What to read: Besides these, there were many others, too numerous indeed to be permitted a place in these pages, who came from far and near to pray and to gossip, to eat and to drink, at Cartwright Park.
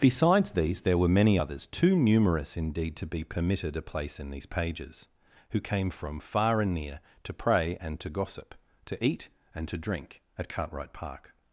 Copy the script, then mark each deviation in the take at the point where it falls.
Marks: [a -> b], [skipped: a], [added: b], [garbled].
Besides these, there were many others, too numerous indeed to be permitted a place in these pages, who came from far and near to pray and to gossip, to eat and to drink, at Cartwright Park.